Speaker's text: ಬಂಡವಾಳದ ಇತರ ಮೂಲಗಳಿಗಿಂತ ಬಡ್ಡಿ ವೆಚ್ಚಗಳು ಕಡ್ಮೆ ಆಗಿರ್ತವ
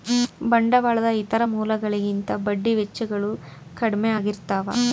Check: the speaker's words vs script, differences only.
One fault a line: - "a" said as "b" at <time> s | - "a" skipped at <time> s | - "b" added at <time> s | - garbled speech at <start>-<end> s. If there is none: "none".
none